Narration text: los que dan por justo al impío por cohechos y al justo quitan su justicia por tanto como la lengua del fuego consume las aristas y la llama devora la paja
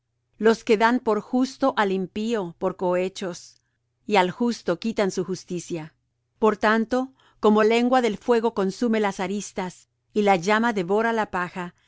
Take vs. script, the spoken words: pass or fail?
fail